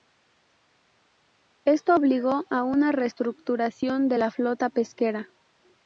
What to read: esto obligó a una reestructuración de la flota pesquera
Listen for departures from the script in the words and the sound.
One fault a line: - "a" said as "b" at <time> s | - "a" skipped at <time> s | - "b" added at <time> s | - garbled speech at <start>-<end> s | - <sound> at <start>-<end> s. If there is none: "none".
none